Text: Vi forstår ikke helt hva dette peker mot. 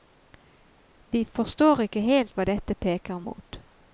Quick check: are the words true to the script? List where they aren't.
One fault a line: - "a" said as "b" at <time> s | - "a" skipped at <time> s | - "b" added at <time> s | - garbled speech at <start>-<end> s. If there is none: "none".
none